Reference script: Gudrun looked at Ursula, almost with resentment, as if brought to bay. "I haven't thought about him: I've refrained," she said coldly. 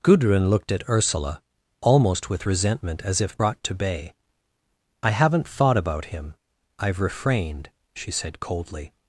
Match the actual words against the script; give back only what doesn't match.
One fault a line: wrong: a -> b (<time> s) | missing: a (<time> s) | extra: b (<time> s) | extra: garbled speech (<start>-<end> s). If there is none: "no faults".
no faults